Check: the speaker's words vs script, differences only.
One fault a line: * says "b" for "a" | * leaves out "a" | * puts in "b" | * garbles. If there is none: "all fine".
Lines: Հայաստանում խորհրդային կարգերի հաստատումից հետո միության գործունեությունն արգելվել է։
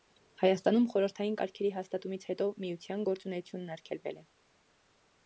all fine